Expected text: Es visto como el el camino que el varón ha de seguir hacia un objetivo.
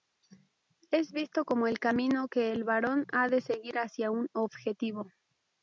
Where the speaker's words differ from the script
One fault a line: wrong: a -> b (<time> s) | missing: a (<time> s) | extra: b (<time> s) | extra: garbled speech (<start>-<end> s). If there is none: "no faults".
missing: el (1.8 s)